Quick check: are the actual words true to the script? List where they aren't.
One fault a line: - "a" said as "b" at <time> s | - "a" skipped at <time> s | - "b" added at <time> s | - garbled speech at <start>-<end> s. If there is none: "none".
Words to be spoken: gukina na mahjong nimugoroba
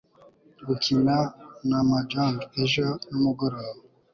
- "ejo" added at 2.6 s